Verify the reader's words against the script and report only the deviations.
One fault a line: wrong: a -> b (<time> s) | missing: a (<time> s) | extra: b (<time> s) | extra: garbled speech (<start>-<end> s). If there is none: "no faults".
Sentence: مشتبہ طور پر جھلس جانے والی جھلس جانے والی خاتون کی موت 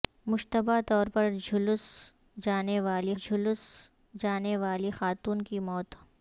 no faults